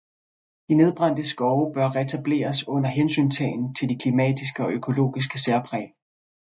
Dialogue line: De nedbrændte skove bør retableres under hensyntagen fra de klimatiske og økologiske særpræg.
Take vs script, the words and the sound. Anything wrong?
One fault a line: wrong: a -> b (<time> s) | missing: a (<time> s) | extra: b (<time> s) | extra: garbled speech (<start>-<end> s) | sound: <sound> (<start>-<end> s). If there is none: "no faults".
wrong: fra -> til (3.8 s)